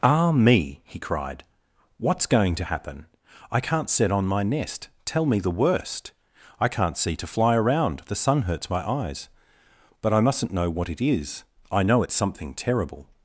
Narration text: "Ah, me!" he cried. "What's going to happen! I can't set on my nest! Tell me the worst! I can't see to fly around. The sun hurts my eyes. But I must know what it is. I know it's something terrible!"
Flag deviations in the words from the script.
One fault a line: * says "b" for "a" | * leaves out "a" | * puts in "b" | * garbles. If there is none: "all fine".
* says "mustn't" for "must"